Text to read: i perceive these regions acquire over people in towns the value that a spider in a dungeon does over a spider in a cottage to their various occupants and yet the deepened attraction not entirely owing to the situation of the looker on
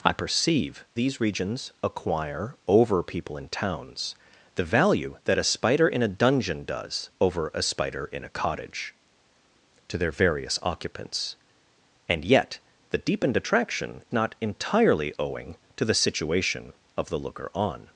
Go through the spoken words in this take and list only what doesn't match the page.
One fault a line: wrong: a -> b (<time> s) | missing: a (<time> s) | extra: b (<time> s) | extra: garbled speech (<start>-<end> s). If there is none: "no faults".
no faults